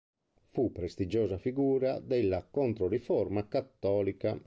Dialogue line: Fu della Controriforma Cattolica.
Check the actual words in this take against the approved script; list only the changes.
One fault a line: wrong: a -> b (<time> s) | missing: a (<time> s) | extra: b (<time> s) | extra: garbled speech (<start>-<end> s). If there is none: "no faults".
extra: prestigiosa figura (0.7 s)